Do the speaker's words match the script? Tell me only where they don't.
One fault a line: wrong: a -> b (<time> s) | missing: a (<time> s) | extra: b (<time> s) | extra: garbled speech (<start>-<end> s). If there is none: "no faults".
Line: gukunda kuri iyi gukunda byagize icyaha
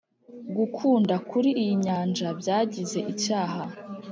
wrong: gukunda -> nyanja (1.8 s)